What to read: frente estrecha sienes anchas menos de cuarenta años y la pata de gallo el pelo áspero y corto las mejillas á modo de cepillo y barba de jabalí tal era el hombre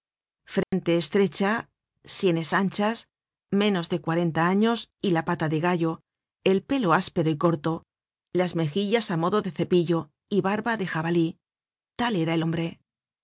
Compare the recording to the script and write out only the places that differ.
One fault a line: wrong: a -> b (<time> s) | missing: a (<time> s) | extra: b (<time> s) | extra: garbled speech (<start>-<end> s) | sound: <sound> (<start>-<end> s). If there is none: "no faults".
sound: dropout (0.6-0.7 s)